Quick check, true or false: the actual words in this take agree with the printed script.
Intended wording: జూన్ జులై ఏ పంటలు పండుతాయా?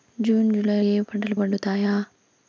true